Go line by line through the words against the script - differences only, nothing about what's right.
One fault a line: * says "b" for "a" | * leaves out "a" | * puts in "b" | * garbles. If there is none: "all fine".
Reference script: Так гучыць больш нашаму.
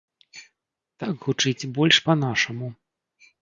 * puts in "па"